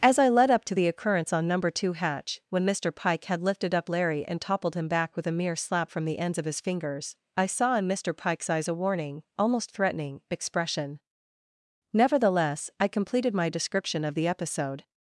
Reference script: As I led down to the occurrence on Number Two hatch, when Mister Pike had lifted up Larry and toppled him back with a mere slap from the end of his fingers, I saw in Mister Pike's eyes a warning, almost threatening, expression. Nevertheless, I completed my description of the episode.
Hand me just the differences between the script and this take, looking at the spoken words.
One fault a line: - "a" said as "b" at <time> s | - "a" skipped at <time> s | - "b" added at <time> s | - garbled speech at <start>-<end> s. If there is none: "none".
- "down" said as "up" at 0.5 s
- "end" said as "ends" at 6.2 s